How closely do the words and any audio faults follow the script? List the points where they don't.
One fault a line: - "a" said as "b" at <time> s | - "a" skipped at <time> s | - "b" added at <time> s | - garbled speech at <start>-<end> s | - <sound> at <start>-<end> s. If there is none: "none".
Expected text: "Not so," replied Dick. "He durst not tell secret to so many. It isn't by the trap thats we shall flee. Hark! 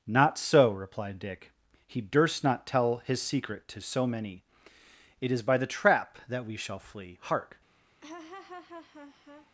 - "his" added at 3.0 s
- "isn't" said as "is" at 5.3 s
- "thats" said as "that" at 6.3 s
- laugh at 8.0-9.5 s